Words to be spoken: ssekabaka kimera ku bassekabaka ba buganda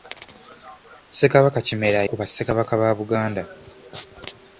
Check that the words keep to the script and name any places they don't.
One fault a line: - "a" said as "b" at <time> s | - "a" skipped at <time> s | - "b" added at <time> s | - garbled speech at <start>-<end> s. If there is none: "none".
none